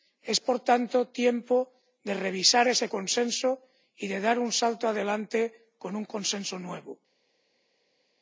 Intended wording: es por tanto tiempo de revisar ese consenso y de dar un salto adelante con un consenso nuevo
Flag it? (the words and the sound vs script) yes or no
no